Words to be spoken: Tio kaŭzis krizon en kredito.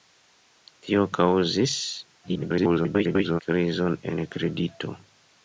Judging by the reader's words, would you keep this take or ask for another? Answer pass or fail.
fail